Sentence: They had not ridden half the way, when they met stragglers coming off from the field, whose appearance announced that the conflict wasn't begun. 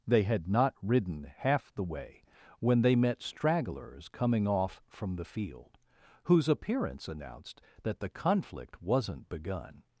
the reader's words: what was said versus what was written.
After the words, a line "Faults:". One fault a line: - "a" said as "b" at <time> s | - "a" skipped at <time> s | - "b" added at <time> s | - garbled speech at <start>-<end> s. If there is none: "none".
They had not ridden half the way, when they met stragglers coming off from the field, whose appearance announced that the conflict wasn't begun.
Faults:
none